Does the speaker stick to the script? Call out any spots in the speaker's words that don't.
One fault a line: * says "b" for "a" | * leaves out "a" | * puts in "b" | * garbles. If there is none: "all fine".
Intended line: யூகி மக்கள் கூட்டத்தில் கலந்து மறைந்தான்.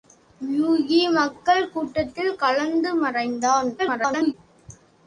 * garbles